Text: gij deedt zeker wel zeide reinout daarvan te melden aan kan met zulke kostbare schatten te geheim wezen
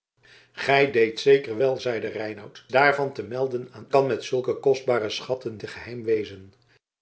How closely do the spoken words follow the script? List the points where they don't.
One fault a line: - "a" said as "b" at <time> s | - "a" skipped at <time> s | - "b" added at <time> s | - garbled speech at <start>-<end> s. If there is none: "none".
none